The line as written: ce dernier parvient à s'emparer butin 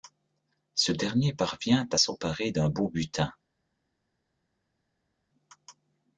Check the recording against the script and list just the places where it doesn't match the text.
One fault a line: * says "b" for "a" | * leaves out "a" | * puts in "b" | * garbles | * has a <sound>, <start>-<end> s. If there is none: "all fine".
* puts in "d'un beau"